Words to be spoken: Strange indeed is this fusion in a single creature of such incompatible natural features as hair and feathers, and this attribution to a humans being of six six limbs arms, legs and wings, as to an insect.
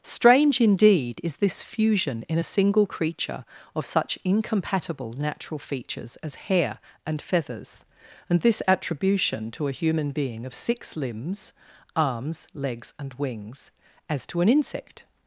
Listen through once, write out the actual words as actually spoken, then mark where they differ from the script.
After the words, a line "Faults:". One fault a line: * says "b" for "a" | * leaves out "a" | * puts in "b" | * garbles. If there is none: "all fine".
Strange indeed is this fusion in a single creature of such incompatible natural features as hair and feathers, and this attribution to a human being of six limbs arms, legs and wings, as to an insect.
Faults:
* says "human" for "humans"
* leaves out "six"